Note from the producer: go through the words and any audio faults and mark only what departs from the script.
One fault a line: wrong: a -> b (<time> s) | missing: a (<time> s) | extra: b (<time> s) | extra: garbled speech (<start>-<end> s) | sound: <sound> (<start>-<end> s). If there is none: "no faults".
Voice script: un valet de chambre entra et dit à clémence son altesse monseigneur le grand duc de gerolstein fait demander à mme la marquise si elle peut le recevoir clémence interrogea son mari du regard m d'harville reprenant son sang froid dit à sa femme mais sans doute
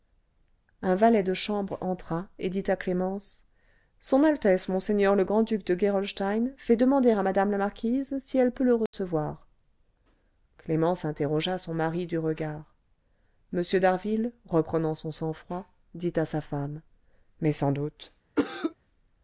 sound: dropout (8.9-8.9 s)
sound: cough (18.4-18.7 s)